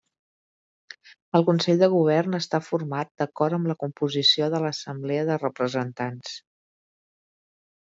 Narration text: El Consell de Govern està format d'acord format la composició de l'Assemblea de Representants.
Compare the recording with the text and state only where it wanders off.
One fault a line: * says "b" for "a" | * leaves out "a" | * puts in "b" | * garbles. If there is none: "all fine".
* says "amb" for "format"